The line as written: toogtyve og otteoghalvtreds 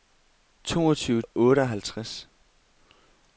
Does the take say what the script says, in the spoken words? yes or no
yes